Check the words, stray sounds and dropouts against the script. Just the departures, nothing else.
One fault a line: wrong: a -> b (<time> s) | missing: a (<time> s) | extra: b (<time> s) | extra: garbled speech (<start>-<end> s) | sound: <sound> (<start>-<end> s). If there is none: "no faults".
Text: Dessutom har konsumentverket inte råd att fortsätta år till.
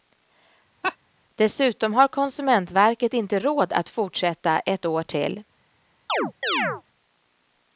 sound: laugh (0.8-1.0 s)
extra: ett (4.6 s)
sound: chirp (6.1-6.8 s)